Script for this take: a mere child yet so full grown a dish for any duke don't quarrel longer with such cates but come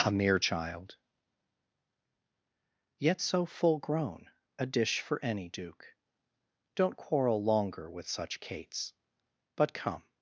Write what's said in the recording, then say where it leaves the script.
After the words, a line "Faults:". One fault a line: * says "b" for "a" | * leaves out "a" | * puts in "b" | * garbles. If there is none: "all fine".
a mere child yet so full grown a dish for any duke don't quarrel longer with such cates but come
Faults:
all fine